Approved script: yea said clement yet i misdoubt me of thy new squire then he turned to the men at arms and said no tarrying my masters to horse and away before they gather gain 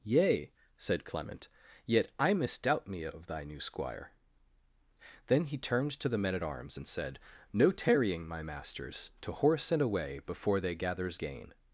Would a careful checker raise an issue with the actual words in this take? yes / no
yes